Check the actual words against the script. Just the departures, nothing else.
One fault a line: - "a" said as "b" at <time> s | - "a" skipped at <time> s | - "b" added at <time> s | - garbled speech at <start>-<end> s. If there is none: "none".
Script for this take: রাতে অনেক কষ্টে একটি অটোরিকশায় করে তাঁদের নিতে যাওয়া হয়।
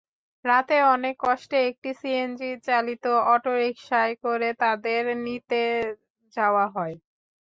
- "সিএনজিচালিত" added at 2.0 s